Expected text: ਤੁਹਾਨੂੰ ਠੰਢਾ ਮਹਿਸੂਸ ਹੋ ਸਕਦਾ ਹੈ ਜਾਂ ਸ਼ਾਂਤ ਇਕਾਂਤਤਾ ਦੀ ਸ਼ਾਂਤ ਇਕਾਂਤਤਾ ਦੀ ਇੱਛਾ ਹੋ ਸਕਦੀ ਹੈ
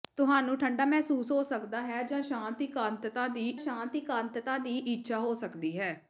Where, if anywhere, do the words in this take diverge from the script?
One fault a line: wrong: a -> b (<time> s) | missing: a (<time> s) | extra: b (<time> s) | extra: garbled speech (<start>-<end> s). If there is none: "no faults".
no faults